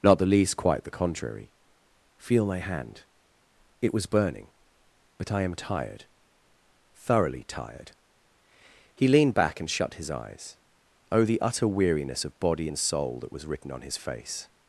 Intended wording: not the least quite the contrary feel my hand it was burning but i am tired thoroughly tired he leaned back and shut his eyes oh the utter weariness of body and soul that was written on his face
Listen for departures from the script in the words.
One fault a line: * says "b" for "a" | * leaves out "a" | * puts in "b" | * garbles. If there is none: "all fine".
all fine